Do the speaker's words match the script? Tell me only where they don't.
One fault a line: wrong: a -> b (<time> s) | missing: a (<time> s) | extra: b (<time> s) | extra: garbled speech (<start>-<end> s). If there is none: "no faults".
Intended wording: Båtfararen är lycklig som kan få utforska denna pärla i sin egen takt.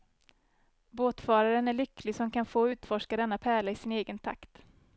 no faults